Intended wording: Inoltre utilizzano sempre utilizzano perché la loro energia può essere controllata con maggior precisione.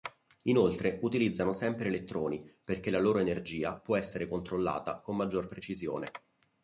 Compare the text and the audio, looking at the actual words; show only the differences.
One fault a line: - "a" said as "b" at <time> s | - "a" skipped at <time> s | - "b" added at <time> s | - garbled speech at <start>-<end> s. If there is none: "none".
- "utilizzano" said as "elettroni" at 1.9 s